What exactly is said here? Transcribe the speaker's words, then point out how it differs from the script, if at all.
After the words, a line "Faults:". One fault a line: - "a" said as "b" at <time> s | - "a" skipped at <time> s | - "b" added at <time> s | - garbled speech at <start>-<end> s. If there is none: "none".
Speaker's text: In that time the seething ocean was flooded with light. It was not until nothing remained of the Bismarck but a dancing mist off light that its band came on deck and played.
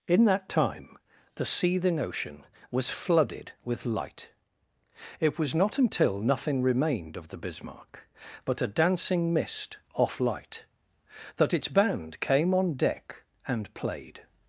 In that time the seething ocean was flooded with light. It was not until nothing remained of the Bismarck but a dancing mist off light that its band came on deck and played.
Faults:
none